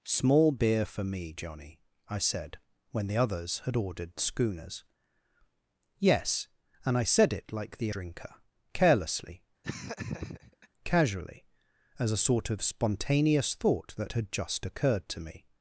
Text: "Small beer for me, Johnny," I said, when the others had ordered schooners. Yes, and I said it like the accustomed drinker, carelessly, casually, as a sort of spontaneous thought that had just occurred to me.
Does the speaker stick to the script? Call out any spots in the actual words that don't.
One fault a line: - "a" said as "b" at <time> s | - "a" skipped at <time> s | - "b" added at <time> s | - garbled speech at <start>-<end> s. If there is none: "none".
- "accustomed" skipped at 7.9 s